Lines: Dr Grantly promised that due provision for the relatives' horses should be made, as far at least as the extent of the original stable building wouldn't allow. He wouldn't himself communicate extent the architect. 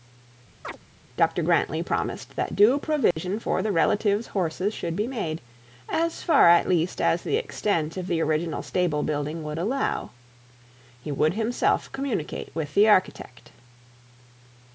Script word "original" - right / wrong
right